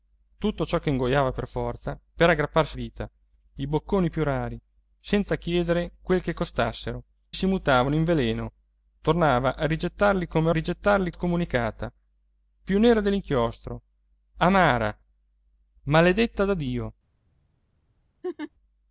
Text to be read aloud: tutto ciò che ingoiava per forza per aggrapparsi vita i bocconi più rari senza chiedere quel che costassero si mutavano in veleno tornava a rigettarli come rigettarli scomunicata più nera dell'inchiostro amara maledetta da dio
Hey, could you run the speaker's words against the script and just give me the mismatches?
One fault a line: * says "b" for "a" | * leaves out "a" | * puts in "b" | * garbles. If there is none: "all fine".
all fine